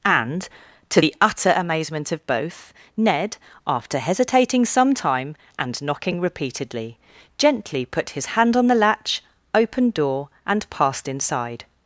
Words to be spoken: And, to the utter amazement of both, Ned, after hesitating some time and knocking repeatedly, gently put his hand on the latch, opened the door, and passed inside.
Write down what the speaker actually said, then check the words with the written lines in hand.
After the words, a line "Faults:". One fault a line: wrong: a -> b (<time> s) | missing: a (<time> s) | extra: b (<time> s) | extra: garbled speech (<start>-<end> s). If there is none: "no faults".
And, to the utter amazement of both, Ned, after hesitating some time and knocking repeatedly, gently put his hand on the latch, opened door, and passed inside.
Faults:
missing: the (9.9 s)